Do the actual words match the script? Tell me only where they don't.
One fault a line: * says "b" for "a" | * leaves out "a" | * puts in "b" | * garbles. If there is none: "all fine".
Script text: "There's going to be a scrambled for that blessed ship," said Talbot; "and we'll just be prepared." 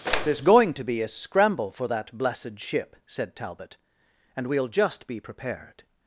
* says "scramble" for "scrambled"